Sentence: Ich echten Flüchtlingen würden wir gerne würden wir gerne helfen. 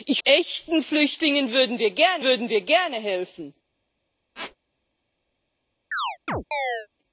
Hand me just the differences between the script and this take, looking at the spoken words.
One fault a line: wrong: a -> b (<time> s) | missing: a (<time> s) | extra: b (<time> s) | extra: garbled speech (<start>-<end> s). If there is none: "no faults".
no faults